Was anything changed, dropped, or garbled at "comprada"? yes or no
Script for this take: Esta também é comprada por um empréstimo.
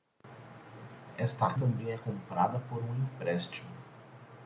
no